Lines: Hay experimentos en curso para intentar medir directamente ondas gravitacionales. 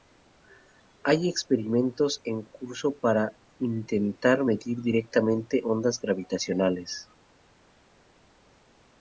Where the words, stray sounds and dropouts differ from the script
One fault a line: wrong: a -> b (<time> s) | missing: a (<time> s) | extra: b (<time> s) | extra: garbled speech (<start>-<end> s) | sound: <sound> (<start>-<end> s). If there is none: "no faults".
no faults